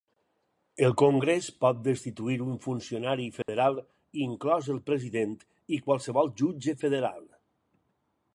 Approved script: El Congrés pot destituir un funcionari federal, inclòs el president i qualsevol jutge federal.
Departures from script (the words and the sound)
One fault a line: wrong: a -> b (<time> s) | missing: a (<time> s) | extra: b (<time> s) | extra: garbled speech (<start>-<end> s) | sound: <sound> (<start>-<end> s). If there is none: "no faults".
sound: dropout (3.4-3.5 s)